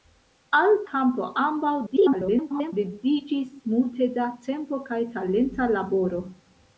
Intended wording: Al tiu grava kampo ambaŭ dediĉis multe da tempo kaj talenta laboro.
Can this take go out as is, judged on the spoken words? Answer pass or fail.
fail